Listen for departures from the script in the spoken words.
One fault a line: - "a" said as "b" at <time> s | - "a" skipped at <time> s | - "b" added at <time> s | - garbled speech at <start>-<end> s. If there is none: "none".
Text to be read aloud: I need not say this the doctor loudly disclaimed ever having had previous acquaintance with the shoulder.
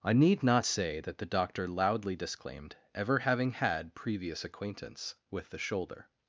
- "this" said as "that" at 1.0 s